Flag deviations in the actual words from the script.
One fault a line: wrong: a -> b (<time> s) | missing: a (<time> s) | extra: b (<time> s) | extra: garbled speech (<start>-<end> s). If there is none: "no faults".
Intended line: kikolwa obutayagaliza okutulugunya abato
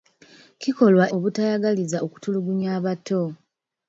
no faults